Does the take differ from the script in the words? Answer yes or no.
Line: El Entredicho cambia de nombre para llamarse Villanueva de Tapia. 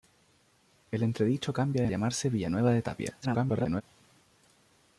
yes